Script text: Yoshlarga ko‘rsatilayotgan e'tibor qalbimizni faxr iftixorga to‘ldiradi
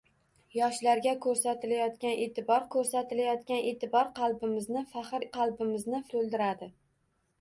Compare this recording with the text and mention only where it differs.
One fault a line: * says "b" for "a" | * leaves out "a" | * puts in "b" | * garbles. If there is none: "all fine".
* puts in "ko‘rsatilayotgan e'tibor"
* says "qalbimizni" for "iftixorga"